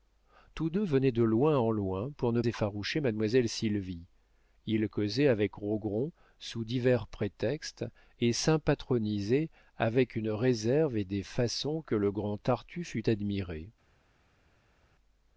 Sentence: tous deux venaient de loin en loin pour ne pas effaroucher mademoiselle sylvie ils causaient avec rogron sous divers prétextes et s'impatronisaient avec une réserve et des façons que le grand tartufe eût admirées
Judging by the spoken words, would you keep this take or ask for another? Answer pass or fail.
fail